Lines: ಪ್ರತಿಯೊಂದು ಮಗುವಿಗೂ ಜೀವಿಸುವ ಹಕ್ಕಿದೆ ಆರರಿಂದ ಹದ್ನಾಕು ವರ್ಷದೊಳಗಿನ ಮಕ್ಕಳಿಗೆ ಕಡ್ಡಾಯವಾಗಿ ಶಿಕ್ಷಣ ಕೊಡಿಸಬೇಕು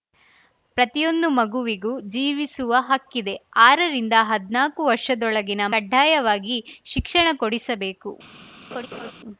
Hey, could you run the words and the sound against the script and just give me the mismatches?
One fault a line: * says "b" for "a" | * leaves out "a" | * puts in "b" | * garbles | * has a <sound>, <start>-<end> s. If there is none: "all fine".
* leaves out "ಮಕ್ಕಳಿಗೆ"
* has a laugh, 8.7-9.1 s